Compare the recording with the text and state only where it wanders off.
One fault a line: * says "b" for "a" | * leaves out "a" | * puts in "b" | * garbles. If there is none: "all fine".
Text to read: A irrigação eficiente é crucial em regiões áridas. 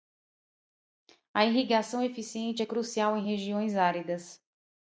all fine